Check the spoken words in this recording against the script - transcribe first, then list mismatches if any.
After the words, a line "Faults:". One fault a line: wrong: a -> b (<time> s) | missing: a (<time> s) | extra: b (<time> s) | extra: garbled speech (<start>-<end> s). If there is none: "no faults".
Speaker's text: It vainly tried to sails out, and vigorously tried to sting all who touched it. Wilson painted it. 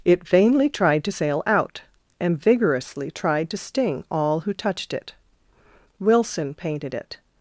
It vainly tried to sail out, and vigorously tried to sting all who touched it. Wilson painted it.
Faults:
wrong: sails -> sail (1.1 s)